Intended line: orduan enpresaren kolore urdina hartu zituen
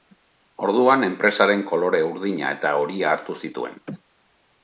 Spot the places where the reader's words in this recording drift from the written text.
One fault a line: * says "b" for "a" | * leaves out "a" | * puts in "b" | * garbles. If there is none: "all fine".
* puts in "eta horia"